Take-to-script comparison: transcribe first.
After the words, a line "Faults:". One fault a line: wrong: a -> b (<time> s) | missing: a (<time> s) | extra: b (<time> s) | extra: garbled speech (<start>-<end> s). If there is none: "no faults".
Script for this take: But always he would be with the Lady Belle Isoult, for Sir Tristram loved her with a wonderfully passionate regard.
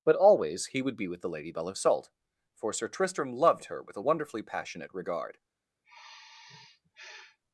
But always he would be with the Lady Belle Isoult, for Sir Tristram loved her with a wonderfully passionate regard.
Faults:
no faults